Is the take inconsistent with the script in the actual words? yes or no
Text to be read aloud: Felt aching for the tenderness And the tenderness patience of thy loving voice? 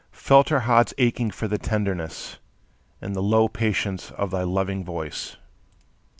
yes